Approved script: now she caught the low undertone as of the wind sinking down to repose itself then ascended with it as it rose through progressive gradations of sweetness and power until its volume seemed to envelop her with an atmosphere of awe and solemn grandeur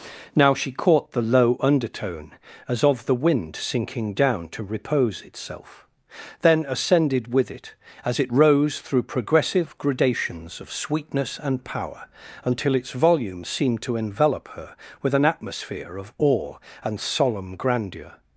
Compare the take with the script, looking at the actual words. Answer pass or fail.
pass